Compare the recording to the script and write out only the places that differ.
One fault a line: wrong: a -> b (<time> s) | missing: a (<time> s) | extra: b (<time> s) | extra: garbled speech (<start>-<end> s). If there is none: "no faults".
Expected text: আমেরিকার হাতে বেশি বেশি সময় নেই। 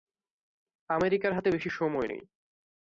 missing: বেশি (1.7 s)